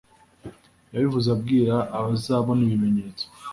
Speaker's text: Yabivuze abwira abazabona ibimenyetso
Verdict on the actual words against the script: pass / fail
pass